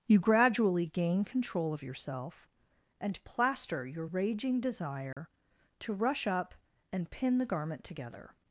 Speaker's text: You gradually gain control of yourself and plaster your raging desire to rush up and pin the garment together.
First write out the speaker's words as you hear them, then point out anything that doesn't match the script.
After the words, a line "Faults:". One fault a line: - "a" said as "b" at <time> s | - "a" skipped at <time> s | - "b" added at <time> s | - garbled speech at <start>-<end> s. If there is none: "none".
You gradually gain control of yourself and plaster your raging desire to rush up and pin the garment together.
Faults:
none